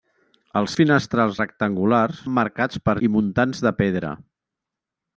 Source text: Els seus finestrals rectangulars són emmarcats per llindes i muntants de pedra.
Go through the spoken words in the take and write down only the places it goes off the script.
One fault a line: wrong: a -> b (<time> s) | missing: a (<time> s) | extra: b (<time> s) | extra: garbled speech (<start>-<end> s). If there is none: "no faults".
missing: seus (0.8 s)
missing: són (2.2 s)
missing: llindes (3.0 s)